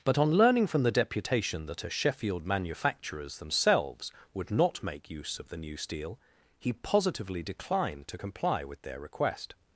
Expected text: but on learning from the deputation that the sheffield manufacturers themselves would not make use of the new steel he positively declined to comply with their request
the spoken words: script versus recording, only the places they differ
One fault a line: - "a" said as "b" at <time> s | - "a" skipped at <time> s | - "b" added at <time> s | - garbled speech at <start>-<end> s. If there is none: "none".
- "the" said as "a" at 1.8 s